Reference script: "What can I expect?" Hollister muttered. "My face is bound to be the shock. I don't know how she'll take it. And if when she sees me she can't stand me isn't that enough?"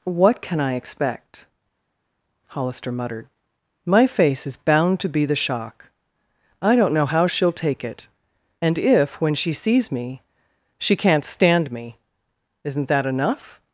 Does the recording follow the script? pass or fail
pass